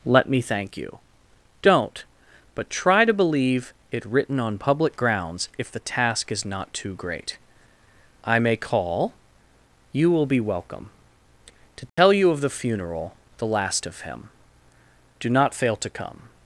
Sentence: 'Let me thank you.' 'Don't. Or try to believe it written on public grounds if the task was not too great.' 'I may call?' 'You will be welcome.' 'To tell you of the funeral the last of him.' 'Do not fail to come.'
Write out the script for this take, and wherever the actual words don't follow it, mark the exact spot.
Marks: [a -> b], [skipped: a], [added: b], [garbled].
'Let me thank you.' 'Don't. [Or -> But] try to believe it written on public grounds if the task [was -> is] not too great.' 'I may call?' 'You will be welcome.' 'To tell you of the funeral the last of him.' 'Do not fail to come.'